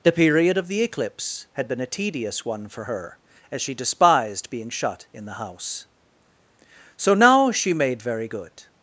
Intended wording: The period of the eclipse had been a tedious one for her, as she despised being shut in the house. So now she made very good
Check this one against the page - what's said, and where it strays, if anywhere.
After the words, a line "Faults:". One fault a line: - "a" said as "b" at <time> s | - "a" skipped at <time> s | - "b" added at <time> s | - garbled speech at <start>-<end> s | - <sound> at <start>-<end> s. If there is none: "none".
The period of the eclipse had been a tedious one for her, as she despised being shut in the house. So now she made very good
Faults:
none